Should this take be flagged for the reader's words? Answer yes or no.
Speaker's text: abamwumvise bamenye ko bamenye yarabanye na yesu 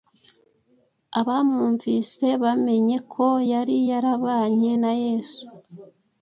yes